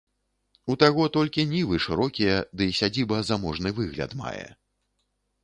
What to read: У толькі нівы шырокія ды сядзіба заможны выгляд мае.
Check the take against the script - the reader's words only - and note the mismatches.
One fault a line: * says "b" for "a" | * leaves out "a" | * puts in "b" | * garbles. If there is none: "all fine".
* puts in "таго"